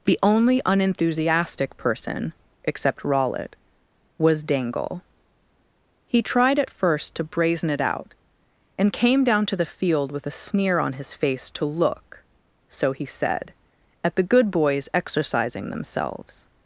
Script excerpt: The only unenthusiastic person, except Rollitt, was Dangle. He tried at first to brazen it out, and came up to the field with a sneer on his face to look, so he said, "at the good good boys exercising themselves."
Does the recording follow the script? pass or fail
fail